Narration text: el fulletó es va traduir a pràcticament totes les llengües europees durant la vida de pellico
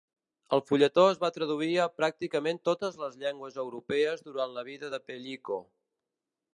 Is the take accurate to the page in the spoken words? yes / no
yes